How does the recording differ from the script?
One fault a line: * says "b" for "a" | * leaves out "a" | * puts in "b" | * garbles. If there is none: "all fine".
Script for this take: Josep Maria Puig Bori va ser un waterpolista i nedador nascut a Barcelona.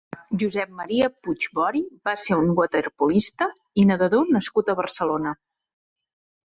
all fine